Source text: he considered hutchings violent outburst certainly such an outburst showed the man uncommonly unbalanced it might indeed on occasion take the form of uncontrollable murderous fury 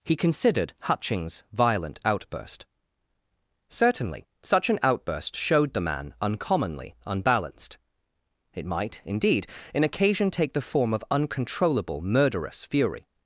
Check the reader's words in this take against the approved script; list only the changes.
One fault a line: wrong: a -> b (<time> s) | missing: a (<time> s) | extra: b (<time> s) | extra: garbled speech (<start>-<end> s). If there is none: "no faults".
wrong: on -> in (9.7 s)